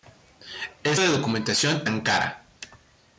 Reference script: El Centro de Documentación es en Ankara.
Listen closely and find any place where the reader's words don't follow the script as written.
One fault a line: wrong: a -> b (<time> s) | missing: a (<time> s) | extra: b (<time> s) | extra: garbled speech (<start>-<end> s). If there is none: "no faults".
missing: Centro (1.0 s)
missing: es en (1.8 s)